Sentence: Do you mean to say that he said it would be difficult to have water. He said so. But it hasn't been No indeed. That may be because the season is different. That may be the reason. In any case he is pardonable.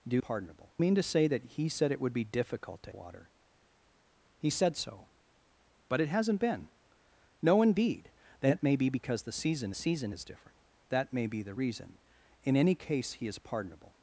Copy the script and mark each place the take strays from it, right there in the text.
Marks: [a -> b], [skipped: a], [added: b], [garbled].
Do [you -> pardonable] mean to say that he said it would be difficult to [skipped: have] water. He said so. But it hasn't been No indeed. That may be because the season [added: season] is different. That may be the reason. In any case he is pardonable.